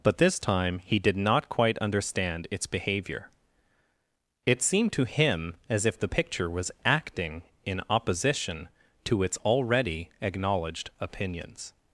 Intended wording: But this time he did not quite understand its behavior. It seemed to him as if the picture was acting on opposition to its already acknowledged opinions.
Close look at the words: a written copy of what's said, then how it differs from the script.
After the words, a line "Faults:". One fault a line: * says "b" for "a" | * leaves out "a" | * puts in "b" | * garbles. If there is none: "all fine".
But this time he did not quite understand its behavior. It seemed to him as if the picture was acting in opposition to its already acknowledged opinions.
Faults:
* says "in" for "on"